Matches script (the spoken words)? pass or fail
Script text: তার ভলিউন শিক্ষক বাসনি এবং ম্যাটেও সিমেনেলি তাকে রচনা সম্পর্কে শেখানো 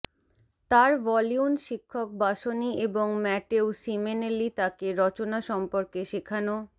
pass